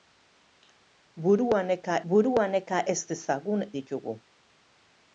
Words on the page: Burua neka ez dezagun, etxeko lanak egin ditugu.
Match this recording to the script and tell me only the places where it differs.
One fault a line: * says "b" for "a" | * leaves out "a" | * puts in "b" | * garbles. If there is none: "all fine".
* puts in "burua neka"
* leaves out "etxeko lanak egin"